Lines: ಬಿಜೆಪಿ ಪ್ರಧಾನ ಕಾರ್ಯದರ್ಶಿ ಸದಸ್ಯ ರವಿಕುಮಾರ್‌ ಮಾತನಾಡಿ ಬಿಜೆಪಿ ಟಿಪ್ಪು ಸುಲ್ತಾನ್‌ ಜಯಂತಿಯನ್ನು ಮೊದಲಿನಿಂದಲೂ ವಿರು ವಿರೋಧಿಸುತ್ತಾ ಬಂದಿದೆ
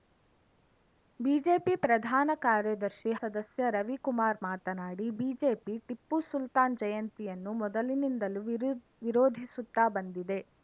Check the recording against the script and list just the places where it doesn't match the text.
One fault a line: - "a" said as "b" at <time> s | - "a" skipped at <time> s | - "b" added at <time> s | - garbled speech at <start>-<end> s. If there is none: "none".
none